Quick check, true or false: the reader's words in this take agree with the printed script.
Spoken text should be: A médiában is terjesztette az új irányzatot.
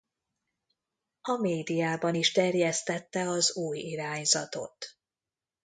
true